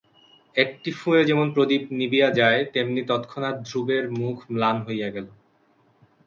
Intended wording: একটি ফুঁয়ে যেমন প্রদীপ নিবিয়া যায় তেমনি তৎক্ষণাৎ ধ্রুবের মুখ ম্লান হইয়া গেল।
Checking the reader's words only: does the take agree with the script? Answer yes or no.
yes